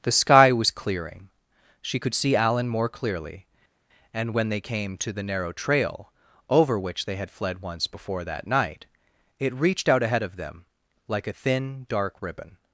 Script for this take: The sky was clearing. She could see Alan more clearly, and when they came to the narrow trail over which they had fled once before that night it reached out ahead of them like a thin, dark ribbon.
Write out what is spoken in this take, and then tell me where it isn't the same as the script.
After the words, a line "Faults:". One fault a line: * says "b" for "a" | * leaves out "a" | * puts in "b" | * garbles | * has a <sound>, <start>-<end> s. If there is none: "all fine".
The sky was clearing. She could see Alan more clearly, and when they came to the narrow trail over which they had fled once before that night it reached out ahead of them like a thin, dark ribbon.
Faults:
all fine